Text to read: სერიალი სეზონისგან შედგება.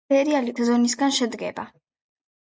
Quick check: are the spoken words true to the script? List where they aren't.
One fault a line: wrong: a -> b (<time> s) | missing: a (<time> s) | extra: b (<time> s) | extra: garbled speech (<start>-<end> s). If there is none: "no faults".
no faults